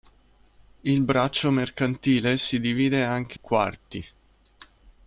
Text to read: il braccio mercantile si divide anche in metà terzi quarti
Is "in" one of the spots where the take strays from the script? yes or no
yes